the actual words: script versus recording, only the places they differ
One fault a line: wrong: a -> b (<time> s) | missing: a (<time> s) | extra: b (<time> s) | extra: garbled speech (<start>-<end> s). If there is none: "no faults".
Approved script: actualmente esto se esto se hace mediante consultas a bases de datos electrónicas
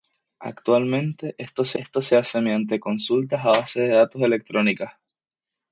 no faults